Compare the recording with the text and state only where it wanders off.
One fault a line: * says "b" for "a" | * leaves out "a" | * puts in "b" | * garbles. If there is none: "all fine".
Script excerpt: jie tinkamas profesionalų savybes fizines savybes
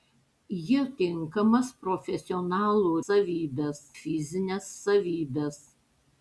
all fine